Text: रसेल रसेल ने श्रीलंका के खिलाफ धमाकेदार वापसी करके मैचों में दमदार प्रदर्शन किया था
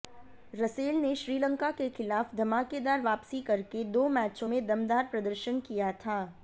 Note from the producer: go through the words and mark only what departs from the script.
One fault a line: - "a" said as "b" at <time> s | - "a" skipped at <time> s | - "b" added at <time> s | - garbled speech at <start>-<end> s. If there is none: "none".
- "रसेल" skipped at 0.9 s
- "दो" added at 3.9 s